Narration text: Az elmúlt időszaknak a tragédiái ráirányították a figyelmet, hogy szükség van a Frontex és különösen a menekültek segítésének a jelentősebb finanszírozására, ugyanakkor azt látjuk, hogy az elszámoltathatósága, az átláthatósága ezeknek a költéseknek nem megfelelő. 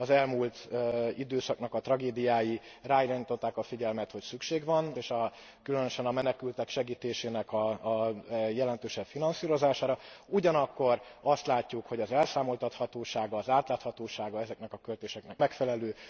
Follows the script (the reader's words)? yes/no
no